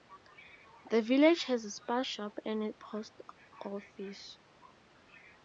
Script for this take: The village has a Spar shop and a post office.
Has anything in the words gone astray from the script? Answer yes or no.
no